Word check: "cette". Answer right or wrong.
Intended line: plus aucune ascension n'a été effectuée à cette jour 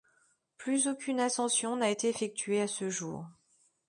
wrong